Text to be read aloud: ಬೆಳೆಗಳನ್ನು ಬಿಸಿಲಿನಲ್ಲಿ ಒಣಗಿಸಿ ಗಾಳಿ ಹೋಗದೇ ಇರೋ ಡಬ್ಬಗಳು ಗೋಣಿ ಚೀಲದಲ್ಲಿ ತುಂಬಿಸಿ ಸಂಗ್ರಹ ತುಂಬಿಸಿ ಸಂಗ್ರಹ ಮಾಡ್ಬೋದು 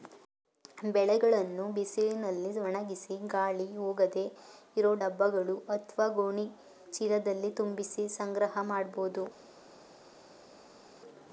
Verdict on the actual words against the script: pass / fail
fail